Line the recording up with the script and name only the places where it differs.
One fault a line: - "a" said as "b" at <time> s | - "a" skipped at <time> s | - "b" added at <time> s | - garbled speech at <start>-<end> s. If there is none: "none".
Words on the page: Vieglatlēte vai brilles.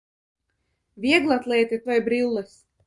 none